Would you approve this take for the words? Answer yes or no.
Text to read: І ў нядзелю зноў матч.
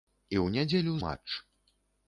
no